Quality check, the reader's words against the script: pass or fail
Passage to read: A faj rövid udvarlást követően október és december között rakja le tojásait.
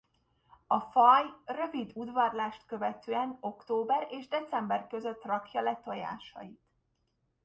pass